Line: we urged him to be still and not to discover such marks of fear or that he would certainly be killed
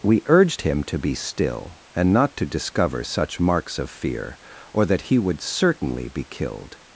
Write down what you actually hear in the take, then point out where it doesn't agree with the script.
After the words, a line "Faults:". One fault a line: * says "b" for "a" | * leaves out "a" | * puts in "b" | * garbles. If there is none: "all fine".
we urged him to be still and not to discover such marks of fear or that he would certainly be killed
Faults:
all fine